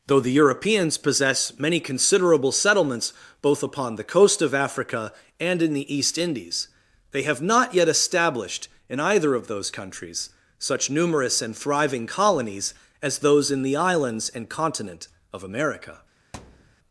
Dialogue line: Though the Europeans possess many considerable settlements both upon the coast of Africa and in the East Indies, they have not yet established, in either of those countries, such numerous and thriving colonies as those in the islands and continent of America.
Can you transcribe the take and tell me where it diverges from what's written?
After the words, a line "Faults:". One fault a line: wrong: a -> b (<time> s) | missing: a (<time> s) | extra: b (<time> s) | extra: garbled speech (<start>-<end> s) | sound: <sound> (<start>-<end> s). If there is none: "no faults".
Though the Europeans possess many considerable settlements both upon the coast of Africa and in the East Indies, they have not yet established, in either of those countries, such numerous and thriving colonies as those in the islands and continent of America.
Faults:
sound: thud (16.3-16.8 s)